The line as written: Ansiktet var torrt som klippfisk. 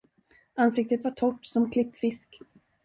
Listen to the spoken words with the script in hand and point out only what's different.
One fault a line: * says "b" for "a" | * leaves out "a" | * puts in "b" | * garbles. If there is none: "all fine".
all fine